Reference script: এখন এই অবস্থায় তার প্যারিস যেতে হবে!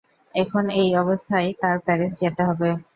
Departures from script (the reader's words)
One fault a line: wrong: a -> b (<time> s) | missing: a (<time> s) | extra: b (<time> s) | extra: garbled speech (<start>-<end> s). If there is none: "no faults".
no faults